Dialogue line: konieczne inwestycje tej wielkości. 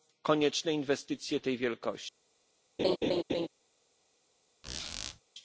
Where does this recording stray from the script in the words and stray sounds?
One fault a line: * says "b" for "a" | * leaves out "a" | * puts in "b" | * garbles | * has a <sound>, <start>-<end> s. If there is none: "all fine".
* has a laugh, 2.8-3.5 s
* has a squeak, 4.6-5.2 s